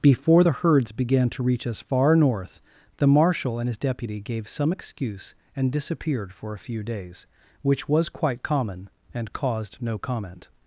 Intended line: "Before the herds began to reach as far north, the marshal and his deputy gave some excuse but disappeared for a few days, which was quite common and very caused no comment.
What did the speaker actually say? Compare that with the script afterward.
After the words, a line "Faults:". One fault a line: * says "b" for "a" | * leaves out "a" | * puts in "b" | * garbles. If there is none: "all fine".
"Before the herds began to reach as far north, the marshal and his deputy gave some excuse and disappeared for a few days, which was quite common and caused no comment.
Faults:
* says "and" for "but"
* leaves out "very"